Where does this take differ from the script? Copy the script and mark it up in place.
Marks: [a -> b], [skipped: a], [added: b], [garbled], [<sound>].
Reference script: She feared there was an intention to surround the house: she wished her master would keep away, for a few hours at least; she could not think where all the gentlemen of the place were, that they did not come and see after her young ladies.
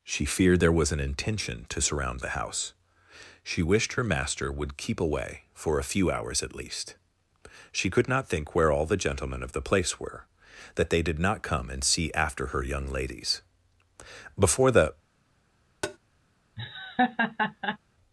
She feared there was an intention to surround the house: she wished her master would keep away, for a few hours at least; she could not think where all the gentlemen of the place were, that they did not come and see after her young ladies. [added: Before the] [tap] [laugh]